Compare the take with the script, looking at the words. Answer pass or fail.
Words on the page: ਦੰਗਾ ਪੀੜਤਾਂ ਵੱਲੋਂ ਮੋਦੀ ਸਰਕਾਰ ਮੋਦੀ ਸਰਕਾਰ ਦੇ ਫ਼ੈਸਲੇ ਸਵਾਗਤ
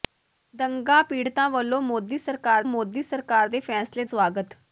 pass